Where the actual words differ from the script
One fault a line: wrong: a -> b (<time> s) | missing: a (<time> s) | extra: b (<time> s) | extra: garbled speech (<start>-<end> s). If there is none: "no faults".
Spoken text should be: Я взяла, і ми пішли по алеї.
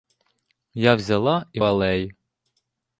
missing: ми пішли по (1.6 s)